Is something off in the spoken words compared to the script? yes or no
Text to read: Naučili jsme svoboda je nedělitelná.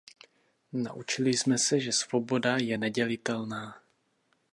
yes